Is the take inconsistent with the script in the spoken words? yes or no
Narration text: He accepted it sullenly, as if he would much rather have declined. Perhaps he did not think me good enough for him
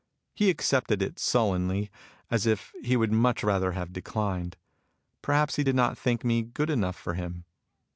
no